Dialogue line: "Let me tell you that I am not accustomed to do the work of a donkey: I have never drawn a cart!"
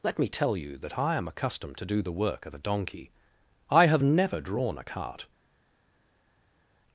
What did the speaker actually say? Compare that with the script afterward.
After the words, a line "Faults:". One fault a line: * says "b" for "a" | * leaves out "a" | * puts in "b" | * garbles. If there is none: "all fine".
"Let me tell you that I am accustomed to do the work of a donkey: I have never drawn a cart!"
Faults:
* leaves out "not"